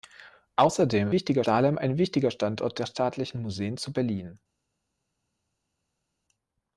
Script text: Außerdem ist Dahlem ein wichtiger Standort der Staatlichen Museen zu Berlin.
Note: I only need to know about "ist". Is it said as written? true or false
false